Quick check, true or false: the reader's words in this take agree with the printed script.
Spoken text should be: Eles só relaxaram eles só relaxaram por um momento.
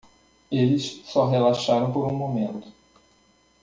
false